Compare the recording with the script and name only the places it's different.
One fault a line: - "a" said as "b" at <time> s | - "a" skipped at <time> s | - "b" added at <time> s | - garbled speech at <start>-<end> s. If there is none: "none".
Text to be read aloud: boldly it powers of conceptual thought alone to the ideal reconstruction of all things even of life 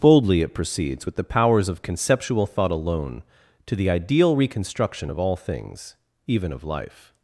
- "proceeds with the" added at 0.6 s